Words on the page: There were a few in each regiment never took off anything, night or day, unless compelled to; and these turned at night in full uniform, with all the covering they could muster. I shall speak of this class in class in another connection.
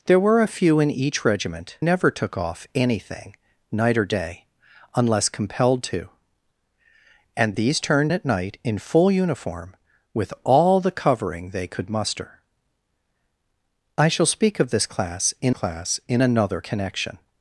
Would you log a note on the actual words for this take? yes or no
no